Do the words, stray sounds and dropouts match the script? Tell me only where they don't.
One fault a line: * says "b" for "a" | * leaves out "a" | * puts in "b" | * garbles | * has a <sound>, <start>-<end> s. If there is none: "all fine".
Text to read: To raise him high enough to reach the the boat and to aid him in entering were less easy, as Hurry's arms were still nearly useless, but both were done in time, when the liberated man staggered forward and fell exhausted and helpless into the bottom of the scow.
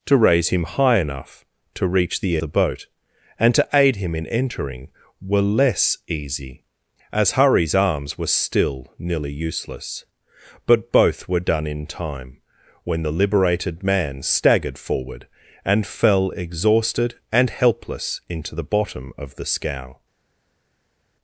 all fine